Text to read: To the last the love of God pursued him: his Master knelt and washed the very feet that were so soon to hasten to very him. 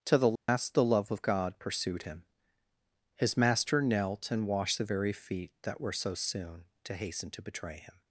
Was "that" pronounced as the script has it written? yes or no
yes